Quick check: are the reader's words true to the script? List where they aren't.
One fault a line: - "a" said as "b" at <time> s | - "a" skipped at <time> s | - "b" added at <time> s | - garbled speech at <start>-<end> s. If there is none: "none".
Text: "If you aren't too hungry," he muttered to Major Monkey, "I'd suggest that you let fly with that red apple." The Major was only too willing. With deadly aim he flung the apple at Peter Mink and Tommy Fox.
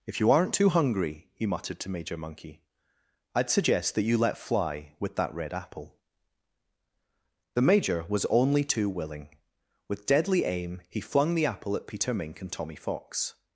none